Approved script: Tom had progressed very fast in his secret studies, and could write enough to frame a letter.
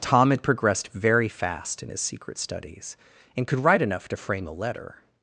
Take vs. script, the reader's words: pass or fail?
pass